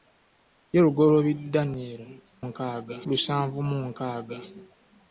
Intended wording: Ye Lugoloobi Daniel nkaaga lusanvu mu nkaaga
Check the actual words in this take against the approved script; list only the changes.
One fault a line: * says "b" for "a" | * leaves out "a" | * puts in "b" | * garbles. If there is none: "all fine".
all fine